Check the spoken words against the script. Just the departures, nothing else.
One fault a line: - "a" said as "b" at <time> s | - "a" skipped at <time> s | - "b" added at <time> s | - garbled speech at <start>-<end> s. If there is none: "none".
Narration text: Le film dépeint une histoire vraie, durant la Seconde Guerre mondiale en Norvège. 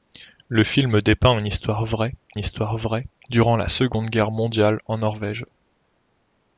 - "histoire vraie" added at 2.4 s